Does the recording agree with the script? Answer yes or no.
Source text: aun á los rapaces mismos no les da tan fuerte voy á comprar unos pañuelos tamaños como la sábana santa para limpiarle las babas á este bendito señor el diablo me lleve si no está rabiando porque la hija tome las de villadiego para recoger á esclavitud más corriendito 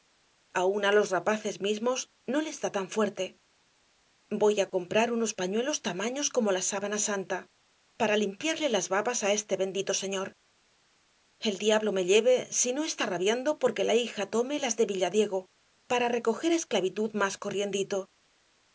yes